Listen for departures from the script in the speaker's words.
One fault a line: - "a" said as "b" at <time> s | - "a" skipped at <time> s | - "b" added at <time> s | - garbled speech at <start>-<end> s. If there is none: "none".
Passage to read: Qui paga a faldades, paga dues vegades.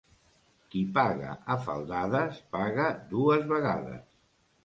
none